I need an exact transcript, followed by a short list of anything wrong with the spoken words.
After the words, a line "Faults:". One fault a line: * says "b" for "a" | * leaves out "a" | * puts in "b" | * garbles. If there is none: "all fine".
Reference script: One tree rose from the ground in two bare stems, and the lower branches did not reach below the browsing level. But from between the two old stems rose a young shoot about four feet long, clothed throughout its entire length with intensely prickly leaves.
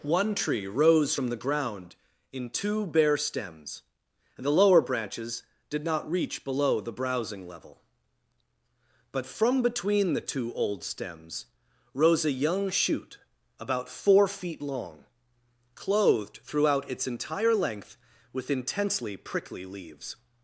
One tree rose from the ground in two bare stems, and the lower branches did not reach below the browsing level. But from between the two old stems rose a young shoot about four feet long, clothed throughout its entire length with intensely prickly leaves.
Faults:
all fine